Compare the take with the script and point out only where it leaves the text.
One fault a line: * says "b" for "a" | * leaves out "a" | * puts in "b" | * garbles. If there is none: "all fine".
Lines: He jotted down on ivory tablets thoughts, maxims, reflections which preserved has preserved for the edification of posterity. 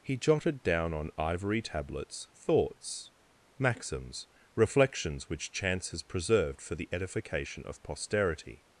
* says "chance" for "preserved"